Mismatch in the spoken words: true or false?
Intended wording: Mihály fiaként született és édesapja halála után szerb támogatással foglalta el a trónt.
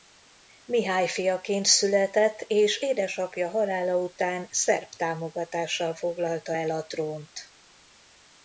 false